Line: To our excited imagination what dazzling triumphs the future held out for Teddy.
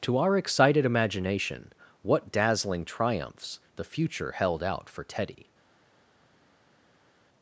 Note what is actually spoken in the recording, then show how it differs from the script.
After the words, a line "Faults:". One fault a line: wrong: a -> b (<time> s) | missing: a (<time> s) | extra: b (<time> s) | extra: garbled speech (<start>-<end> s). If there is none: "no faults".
To our excited imagination what dazzling triumphs the future held out for Teddy.
Faults:
no faults